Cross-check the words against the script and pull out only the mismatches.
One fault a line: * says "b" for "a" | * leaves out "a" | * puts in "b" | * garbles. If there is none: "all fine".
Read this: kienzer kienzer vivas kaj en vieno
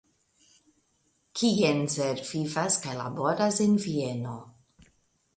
* leaves out "kienzer"
* puts in "laboras"